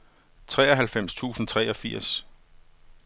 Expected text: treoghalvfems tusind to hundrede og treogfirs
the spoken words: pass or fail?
fail